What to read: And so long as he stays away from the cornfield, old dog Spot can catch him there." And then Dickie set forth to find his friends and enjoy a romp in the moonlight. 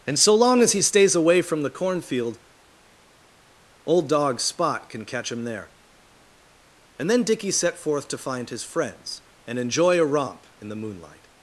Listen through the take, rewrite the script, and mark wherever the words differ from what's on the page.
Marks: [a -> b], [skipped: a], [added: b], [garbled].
And so long as he stays away from the cornfield, old dog Spot can catch him there." And then Dickie set forth to find his friends and enjoy a romp in the moonlight.